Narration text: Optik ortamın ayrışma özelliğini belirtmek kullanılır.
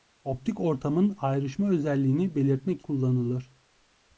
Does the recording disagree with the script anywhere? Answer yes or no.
no